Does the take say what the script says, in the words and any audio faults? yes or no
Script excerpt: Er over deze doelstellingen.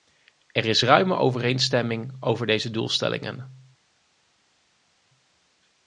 no